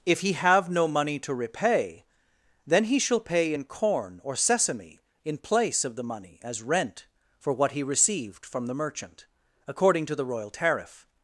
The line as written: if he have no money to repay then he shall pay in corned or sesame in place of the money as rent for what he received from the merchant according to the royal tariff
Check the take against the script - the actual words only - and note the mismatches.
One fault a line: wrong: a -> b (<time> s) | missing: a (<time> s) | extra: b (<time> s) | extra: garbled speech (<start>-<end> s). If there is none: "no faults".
wrong: corned -> corn (3.7 s)